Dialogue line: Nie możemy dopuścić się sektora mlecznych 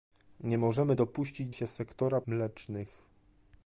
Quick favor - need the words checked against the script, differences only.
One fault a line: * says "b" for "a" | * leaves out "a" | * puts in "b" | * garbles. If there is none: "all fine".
all fine